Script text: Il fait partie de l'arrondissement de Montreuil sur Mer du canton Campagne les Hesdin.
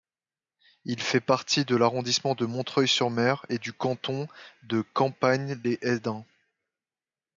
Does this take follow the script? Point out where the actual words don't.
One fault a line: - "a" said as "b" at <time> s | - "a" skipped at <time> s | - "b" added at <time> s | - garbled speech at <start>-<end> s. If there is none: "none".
- "et" added at 3.5 s
- "de" added at 4.6 s